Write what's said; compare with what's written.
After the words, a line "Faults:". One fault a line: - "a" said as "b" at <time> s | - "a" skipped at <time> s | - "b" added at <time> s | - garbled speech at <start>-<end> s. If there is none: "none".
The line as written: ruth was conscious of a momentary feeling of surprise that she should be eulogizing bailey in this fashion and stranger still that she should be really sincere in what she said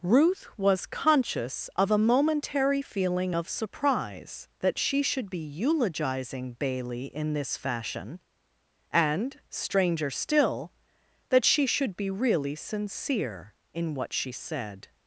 ruth was conscious of a momentary feeling of surprise that she should be eulogizing bailey in this fashion and stranger still that she should be really sincere in what she said
Faults:
none